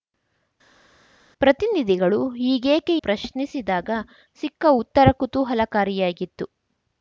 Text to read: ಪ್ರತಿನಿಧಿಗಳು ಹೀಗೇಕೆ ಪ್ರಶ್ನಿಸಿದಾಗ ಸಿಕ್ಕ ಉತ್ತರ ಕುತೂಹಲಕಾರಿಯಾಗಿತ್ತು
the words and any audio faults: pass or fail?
pass